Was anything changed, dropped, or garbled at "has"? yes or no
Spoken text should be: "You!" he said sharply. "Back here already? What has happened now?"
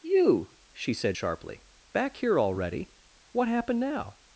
yes